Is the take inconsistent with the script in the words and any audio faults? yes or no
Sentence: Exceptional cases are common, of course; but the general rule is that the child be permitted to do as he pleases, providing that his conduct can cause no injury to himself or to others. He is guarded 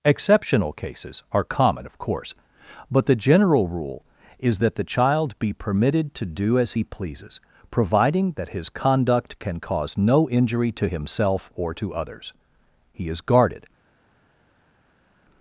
no